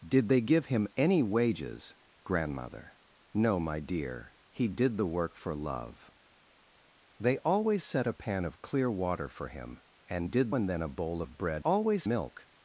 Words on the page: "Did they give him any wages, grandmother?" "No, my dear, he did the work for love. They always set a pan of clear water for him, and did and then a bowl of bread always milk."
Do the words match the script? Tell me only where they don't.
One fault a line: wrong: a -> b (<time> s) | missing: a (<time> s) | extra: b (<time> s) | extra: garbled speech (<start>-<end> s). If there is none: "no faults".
no faults